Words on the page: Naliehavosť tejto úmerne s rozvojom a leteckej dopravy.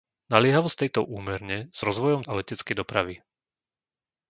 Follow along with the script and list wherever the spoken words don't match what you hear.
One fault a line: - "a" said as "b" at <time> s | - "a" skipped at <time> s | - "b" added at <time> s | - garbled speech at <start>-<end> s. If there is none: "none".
none